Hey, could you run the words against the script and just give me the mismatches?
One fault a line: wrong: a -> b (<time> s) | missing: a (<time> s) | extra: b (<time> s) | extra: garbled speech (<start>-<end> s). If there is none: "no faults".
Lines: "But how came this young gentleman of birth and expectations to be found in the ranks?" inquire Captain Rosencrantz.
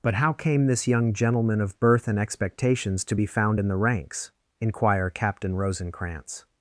no faults